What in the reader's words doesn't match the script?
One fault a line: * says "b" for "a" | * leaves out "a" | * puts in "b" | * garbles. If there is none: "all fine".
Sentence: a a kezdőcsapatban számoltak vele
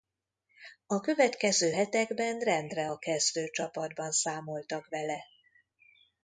* puts in "következő hetekben rendre"